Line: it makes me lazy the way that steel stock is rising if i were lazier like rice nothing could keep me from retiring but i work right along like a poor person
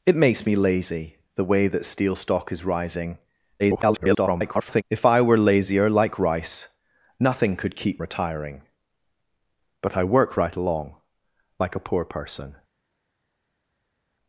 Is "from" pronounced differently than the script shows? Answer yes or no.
yes